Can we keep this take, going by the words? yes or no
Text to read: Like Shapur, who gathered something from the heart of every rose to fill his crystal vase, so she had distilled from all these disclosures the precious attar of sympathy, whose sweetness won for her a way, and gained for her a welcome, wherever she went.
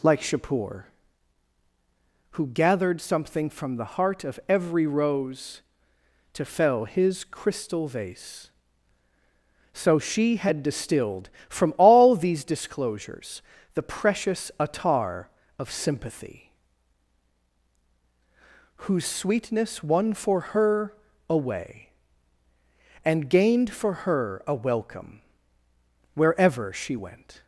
no